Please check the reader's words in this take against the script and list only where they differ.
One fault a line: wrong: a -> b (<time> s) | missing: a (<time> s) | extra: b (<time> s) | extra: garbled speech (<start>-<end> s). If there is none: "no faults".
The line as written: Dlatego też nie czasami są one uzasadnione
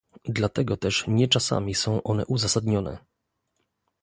no faults